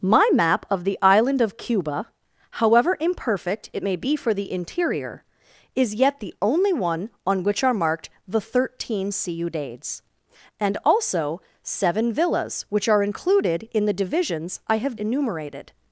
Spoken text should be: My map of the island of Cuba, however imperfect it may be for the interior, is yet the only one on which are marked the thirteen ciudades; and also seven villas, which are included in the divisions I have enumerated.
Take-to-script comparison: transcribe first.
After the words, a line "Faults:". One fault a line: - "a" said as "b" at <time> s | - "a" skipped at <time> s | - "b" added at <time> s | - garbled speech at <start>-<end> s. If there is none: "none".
My map of the island of Cuba, however imperfect it may be for the interior, is yet the only one on which are marked the thirteen ciudades; and also seven villas, which are included in the divisions I have enumerated.
Faults:
none